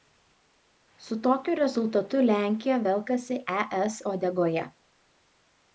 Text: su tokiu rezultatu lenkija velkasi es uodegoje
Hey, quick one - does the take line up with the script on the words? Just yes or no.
yes